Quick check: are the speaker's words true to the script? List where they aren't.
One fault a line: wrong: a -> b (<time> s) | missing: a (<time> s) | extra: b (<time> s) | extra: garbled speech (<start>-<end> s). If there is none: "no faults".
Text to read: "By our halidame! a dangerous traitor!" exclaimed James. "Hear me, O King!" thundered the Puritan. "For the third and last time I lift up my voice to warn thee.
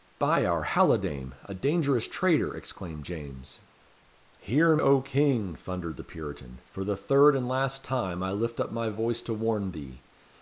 missing: me (4.8 s)